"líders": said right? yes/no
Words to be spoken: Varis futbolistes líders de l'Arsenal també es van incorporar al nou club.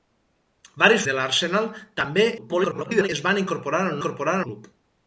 no